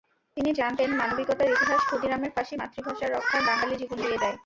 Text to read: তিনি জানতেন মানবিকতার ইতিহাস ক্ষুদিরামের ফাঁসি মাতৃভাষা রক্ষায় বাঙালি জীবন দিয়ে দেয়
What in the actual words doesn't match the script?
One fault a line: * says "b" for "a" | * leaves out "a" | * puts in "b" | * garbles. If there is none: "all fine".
all fine